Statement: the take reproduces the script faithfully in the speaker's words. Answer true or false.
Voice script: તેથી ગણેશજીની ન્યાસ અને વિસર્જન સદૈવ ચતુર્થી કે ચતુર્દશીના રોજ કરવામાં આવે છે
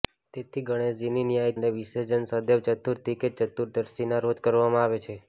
true